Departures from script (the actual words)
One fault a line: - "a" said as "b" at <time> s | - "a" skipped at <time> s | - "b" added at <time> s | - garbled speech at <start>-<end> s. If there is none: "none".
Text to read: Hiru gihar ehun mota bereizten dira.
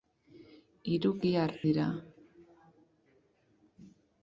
- "ehun mota bereizten" skipped at 1.5 s